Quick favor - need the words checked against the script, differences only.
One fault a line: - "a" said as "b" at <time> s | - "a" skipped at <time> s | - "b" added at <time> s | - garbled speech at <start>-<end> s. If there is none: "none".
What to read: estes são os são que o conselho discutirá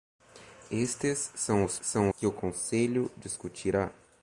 none